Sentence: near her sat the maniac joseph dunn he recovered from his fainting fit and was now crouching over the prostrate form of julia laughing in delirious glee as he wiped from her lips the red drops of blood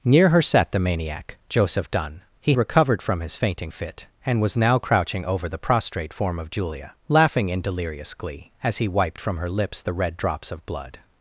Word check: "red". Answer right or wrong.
right